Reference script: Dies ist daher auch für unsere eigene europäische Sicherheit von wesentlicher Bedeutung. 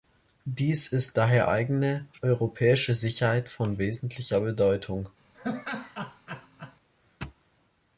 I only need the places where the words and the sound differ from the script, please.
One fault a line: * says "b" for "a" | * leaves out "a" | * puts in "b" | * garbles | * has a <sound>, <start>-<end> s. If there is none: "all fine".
* leaves out "auch für unsere"
* has a laugh, 5.3-6.8 s